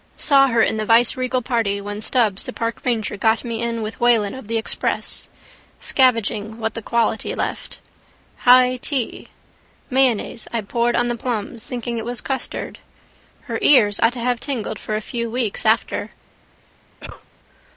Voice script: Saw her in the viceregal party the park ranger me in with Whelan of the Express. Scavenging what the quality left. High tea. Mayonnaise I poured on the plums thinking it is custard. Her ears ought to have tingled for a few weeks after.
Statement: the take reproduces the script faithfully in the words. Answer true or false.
false